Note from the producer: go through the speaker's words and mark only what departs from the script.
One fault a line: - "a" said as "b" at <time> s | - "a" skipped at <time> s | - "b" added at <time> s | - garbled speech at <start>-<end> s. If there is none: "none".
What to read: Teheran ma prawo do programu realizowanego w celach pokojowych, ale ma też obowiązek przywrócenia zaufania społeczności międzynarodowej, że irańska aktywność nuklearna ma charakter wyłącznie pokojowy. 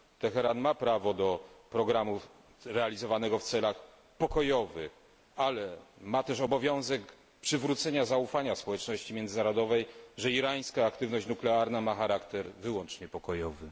none